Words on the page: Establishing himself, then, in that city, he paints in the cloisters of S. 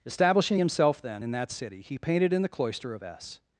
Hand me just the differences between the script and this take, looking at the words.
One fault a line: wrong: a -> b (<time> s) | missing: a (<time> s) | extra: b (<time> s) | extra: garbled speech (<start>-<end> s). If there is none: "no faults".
wrong: paints -> painted (2.0 s)
wrong: cloisters -> cloister (2.5 s)